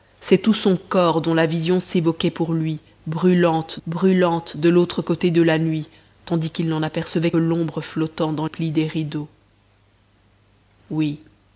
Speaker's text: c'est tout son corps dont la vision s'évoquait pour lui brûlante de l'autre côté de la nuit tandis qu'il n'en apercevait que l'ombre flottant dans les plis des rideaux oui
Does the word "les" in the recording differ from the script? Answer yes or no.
yes